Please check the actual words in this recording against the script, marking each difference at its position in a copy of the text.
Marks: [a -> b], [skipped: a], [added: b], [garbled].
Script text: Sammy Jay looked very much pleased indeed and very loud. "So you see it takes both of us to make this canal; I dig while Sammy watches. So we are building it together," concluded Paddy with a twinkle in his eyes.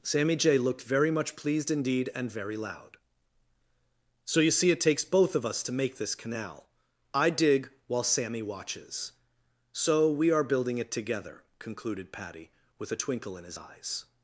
Sammy Jay looked very much pleased indeed and very loud. "So you see it takes both of us to make this canal; I dig while Sammy watches. So we are building it together," concluded Paddy with a twinkle in his eyes.